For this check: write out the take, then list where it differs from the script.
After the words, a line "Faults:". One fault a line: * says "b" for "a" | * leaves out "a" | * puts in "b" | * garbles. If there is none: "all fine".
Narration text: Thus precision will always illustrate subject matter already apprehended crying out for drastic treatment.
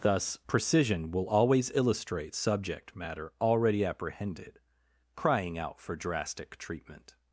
Thus precision will always illustrate subject matter already apprehended crying out for drastic treatment.
Faults:
all fine